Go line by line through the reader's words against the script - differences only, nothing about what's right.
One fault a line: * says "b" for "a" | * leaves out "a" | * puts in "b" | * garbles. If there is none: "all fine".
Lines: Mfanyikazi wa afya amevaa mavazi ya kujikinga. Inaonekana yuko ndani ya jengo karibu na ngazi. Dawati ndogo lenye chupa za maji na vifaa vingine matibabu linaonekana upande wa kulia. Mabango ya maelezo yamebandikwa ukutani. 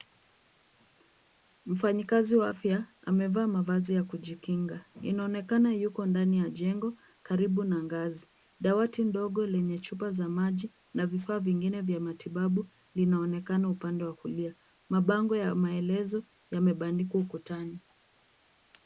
* puts in "vya"